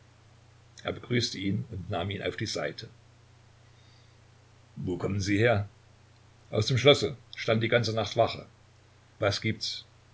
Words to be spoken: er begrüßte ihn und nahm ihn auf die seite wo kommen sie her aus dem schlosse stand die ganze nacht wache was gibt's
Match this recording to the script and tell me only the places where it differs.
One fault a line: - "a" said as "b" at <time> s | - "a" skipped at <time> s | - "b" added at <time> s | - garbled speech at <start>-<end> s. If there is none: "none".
none